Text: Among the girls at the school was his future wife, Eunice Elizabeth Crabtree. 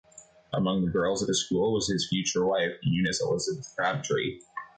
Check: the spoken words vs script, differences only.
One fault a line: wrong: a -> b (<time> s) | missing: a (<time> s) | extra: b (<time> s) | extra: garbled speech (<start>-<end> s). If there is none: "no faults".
no faults